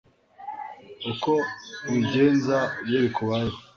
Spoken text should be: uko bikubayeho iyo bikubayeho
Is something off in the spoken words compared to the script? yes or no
yes